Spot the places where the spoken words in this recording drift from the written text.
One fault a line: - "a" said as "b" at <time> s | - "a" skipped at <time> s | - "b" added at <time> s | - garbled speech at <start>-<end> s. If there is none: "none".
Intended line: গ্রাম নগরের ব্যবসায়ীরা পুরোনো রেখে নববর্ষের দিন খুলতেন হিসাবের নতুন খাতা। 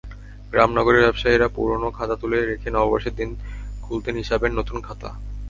- "খাতা তুলে" added at 2.0 s